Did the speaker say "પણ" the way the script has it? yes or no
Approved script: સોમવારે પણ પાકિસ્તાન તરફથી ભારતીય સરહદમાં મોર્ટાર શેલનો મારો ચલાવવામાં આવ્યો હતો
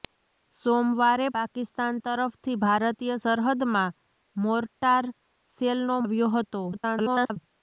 no